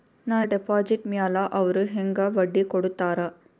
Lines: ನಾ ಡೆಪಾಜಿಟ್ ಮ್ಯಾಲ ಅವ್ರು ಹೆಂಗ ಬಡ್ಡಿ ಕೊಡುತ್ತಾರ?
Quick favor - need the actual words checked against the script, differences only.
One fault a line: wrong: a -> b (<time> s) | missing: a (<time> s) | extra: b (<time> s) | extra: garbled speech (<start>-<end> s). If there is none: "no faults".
no faults